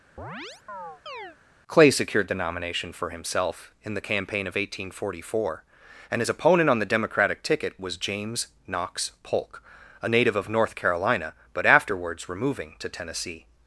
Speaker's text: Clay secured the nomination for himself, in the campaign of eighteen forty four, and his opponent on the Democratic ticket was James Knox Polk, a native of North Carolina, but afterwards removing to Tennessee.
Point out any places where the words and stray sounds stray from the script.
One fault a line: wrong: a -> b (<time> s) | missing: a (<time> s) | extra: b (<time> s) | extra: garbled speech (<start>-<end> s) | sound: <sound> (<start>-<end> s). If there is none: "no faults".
sound: chirp (0.2-1.4 s)